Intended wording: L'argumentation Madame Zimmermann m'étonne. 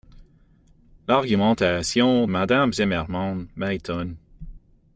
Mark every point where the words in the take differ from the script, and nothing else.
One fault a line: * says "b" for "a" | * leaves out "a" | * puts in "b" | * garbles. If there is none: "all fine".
all fine